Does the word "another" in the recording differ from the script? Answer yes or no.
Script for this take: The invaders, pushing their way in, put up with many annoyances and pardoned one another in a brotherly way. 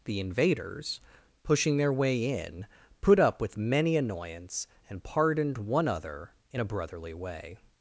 yes